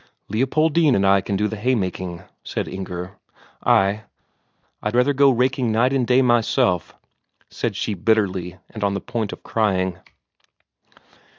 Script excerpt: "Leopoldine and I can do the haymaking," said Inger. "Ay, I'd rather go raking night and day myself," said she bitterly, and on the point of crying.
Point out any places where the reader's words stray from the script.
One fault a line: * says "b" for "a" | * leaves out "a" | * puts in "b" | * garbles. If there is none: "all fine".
all fine